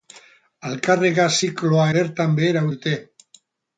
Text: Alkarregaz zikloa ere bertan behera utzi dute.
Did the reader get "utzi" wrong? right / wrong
wrong